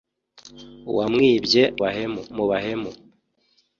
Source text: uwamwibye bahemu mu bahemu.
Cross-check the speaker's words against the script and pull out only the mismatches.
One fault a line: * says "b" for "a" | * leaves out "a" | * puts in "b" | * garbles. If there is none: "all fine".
all fine